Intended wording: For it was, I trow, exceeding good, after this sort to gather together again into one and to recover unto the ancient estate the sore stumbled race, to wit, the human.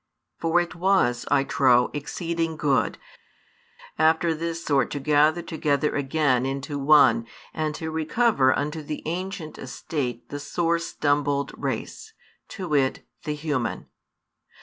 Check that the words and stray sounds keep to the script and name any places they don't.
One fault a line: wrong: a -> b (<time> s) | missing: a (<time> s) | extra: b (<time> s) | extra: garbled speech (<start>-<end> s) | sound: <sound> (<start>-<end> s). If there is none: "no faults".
no faults